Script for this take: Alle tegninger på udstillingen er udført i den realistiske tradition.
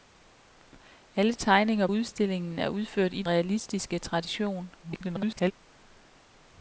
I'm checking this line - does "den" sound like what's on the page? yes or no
no